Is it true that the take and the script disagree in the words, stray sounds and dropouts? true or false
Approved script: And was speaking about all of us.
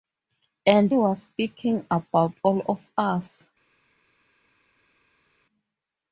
false